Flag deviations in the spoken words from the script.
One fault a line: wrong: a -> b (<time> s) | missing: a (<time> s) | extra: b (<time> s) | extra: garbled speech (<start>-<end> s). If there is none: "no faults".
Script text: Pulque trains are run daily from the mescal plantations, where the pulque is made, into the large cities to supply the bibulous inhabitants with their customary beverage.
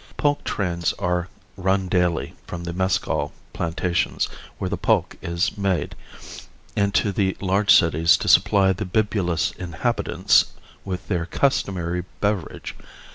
no faults